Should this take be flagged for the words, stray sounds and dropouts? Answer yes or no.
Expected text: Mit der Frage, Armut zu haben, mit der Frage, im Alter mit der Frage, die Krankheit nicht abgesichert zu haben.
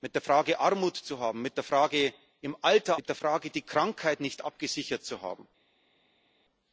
no